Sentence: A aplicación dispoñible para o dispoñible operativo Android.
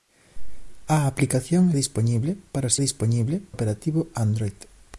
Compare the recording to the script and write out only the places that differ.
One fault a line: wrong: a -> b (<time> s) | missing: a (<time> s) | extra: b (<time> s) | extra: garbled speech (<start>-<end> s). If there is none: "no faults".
no faults